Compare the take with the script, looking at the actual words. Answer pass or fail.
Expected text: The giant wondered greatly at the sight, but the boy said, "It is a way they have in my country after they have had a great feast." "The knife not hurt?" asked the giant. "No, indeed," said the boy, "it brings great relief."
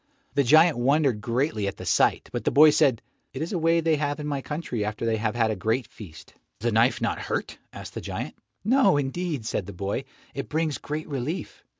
pass